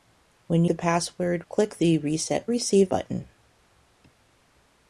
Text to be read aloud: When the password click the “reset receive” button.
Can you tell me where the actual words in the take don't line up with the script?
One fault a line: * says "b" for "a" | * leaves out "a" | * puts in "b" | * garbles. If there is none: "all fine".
all fine